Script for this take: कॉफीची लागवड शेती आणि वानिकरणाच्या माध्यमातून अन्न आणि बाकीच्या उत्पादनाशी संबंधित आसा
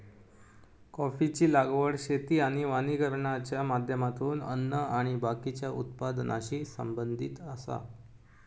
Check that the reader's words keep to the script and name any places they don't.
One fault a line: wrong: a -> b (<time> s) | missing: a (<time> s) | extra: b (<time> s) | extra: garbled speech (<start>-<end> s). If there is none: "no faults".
no faults